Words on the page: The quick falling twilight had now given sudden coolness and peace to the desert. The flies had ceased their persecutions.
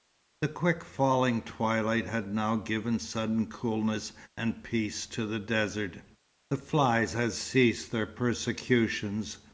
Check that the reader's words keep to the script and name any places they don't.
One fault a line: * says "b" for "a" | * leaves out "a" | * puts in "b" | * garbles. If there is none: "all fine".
all fine